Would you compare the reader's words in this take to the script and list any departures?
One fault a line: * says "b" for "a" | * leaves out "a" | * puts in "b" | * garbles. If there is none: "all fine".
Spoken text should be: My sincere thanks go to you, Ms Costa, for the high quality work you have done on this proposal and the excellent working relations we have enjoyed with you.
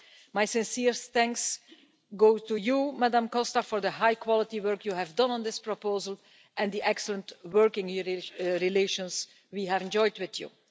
all fine